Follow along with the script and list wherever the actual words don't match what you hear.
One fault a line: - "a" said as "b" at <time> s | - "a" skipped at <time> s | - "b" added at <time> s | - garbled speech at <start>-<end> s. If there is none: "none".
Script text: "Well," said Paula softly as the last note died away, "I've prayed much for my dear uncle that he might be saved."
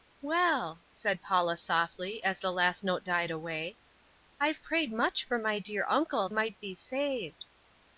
- "that he" skipped at 6.3 s